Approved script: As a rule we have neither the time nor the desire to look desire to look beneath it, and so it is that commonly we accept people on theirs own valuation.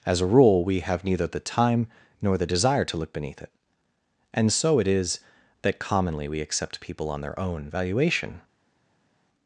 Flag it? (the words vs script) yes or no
yes